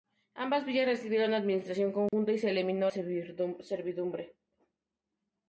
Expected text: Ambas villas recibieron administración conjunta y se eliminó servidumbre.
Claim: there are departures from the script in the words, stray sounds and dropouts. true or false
true